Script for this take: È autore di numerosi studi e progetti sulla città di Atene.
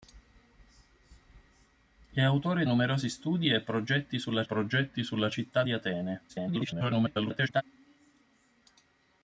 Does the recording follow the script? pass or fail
fail